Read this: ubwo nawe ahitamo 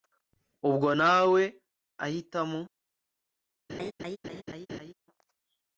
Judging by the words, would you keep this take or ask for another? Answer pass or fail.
pass